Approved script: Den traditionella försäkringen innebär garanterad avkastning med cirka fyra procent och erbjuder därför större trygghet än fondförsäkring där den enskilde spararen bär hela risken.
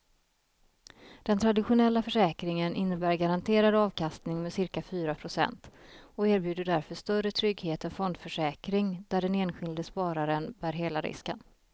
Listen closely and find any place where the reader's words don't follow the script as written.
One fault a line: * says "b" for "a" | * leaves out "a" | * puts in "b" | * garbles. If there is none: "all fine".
all fine